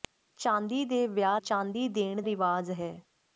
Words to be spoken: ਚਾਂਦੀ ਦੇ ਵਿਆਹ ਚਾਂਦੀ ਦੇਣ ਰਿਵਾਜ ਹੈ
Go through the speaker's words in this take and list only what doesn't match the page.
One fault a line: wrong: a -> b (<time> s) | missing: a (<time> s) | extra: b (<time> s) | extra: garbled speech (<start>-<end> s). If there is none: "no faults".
no faults